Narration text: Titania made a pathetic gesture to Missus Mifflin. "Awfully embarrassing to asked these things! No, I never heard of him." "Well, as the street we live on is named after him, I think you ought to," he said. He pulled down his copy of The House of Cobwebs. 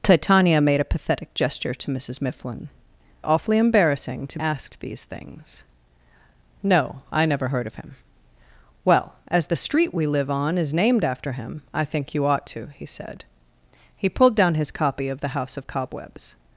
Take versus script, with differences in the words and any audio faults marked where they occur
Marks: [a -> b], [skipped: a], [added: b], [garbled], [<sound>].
Titania made a pathetic gesture to Missus Mifflin. "Awfully embarrassing to asked these things! No, I never heard of him." "Well, as the street we live on is named after him, I think you ought to," he said. He pulled down his copy of The House of Cobwebs.